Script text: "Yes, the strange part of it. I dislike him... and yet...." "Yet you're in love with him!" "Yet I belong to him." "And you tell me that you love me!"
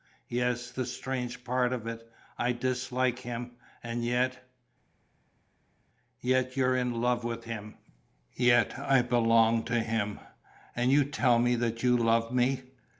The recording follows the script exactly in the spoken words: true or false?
true